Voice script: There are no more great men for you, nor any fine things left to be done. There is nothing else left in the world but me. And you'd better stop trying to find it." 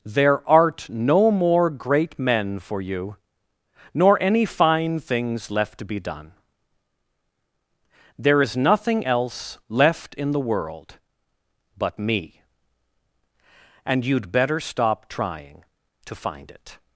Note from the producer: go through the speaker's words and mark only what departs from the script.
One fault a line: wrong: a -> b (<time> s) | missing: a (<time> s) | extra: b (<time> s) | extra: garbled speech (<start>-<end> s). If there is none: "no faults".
wrong: are -> art (0.5 s)